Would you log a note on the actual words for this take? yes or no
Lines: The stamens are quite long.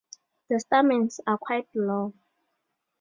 no